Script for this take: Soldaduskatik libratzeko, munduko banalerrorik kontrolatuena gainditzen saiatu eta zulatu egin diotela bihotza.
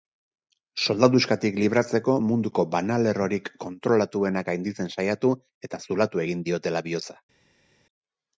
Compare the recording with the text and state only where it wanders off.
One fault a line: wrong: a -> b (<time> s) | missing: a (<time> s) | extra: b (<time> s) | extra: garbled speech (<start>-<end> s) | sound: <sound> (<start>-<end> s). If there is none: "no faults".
no faults